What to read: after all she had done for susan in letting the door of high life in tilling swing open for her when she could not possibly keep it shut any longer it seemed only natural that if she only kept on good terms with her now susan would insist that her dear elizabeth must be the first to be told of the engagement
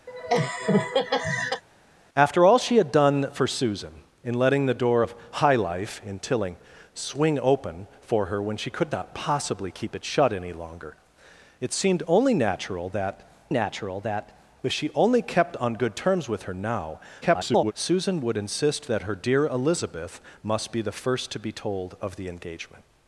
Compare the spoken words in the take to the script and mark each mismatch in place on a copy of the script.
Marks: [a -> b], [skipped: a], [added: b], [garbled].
after all she had done for susan in letting the door of high life in tilling swing open for her when she could not possibly keep it shut any longer it seemed only natural that [added: natural that] if she only kept on good terms with her now [garbled] susan would insist that her dear elizabeth must be the first to be told of the engagement